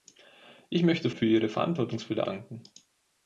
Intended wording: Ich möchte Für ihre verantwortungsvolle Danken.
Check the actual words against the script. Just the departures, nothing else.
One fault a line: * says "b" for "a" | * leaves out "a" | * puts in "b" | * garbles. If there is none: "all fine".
all fine